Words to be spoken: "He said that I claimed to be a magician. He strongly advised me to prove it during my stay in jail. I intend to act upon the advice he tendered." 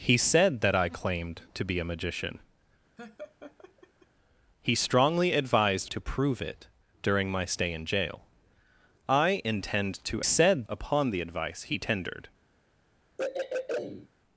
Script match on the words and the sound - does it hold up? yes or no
no